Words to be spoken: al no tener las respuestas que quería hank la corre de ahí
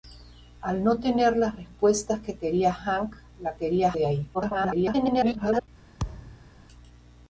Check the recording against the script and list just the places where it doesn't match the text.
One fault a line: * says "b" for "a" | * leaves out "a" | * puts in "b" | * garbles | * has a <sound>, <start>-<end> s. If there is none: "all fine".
* says "quería" for "corre"
* garbles
* has a thud, 6.0-6.5 s